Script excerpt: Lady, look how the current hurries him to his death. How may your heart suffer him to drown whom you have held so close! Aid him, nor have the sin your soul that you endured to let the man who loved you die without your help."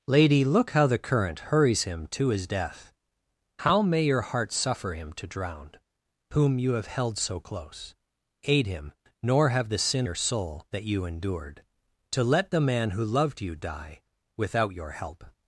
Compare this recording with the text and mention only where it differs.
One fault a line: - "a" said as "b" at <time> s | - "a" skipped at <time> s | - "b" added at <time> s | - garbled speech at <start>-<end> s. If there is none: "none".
none